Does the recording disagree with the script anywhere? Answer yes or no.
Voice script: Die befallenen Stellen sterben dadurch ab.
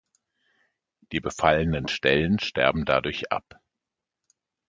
no